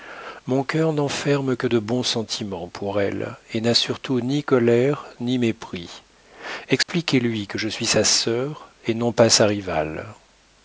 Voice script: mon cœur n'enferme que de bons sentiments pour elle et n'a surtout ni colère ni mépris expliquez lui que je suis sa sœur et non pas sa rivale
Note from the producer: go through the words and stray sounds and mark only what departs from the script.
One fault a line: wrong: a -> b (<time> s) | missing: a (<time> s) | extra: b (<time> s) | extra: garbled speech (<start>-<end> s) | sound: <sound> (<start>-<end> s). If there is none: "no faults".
sound: dropout (6.8-6.9 s)